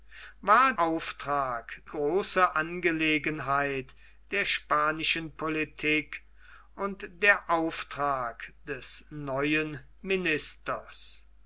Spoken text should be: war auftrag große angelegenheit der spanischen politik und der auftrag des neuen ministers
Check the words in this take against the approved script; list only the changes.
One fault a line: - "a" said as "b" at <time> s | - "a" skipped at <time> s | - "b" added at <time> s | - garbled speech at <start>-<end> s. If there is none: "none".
none